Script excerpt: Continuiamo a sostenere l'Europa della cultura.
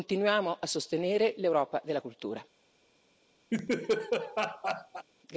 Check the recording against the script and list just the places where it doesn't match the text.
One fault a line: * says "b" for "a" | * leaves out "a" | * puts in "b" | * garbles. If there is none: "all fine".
all fine